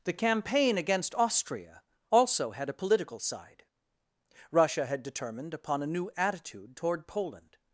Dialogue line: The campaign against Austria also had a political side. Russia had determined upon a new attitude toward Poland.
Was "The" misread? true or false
false